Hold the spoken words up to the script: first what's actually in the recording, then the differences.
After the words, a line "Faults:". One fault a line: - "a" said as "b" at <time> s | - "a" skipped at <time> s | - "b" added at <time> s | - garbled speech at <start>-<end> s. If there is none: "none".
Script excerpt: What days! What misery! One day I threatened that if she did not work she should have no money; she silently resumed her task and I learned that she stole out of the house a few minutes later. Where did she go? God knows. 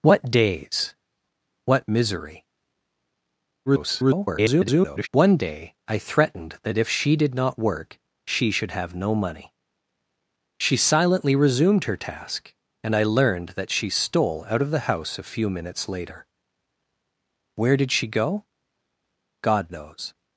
What days! What misery! [garbled] One day I threatened that if she did not work she should have no money; she silently resumed her task and I learned that she stole out of the house a few minutes later. Where did she go? God knows.
Faults:
- garbled speech at 3.7-5.1 s